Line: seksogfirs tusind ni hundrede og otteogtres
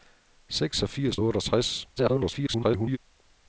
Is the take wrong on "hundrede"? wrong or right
wrong